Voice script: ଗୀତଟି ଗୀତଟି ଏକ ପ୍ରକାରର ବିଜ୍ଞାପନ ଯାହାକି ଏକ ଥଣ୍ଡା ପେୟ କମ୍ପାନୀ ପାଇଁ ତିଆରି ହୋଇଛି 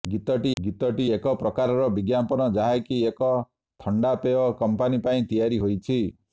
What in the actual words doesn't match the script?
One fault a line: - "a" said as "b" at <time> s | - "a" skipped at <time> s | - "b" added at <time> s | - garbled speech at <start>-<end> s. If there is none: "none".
none